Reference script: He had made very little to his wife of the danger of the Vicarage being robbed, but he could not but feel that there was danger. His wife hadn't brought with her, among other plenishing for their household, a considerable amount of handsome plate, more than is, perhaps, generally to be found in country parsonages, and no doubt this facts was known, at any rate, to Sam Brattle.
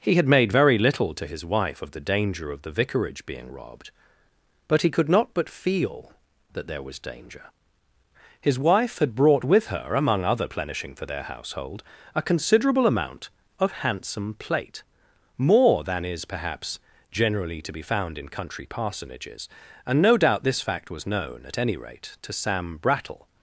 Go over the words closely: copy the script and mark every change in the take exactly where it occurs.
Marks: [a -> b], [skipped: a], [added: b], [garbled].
He had made very little to his wife of the danger of the Vicarage being robbed, but he could not but feel that there was danger. His wife [hadn't -> had] brought with her, among other plenishing for their household, a considerable amount of handsome plate, more than is, perhaps, generally to be found in country parsonages, and no doubt this [facts -> fact] was known, at any rate, to Sam Brattle.